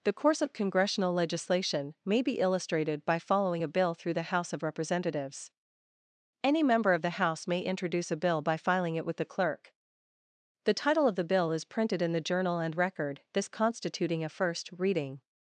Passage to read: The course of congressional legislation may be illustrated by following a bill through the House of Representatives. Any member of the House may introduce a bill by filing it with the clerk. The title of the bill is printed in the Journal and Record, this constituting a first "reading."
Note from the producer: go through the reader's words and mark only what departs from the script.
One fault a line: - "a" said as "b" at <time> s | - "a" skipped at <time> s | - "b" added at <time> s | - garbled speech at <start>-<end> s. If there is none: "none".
none